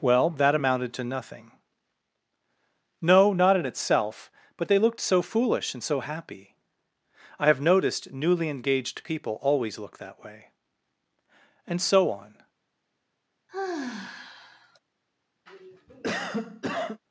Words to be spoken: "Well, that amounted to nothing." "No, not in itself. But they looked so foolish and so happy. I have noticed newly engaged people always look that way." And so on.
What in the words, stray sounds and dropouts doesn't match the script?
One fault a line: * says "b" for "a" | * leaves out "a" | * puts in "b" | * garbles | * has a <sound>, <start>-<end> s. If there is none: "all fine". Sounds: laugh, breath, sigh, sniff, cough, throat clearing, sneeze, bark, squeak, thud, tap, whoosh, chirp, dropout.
* has a sigh, 13.5-14.8 s
* has a cough, 15.5-17.0 s